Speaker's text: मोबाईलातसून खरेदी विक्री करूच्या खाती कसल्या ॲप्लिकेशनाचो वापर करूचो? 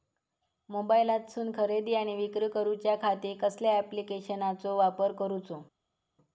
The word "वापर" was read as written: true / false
true